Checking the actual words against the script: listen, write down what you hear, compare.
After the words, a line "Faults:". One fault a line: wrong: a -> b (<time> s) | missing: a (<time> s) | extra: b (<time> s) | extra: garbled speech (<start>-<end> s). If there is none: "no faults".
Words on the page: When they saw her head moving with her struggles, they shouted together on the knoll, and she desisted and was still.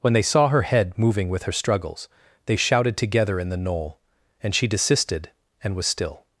When they saw her head moving with her struggles, they shouted together in the knoll, and she desisted and was still.
Faults:
wrong: on -> in (3.4 s)